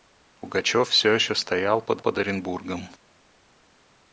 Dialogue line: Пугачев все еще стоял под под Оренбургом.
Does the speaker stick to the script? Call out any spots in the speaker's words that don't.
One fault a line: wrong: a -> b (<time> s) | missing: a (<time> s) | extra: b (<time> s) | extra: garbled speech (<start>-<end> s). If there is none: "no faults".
no faults